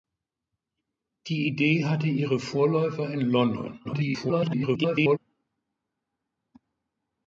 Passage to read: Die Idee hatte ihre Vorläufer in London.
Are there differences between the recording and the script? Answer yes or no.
yes